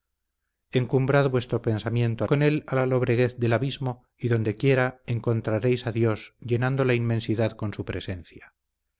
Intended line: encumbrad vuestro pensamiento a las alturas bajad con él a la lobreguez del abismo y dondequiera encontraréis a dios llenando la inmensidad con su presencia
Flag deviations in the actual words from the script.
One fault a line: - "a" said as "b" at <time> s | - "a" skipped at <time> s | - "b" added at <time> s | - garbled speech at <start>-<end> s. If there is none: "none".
- "las alturas bajad" skipped at 2.3 s